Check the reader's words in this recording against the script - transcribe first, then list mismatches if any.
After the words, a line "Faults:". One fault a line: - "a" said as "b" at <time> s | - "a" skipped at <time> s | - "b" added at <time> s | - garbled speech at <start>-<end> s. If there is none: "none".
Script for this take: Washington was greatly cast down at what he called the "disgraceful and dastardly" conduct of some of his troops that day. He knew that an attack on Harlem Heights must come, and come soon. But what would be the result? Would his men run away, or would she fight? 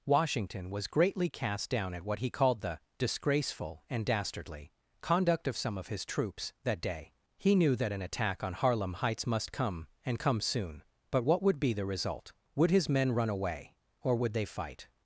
Washington was greatly cast down at what he called the "disgraceful and dastardly" conduct of some of his troops that day. He knew that an attack on Harlem Heights must come, and come soon. But what would be the result? Would his men run away, or would they fight?
Faults:
- "she" said as "they" at 14.3 s